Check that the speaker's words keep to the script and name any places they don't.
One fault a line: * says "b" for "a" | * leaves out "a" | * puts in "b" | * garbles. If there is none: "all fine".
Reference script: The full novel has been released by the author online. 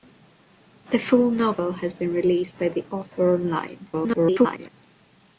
* garbles